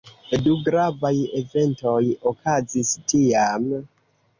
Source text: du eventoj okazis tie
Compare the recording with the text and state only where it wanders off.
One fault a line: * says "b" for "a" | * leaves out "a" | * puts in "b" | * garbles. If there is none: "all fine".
* puts in "gravaj"
* says "tiam" for "tie"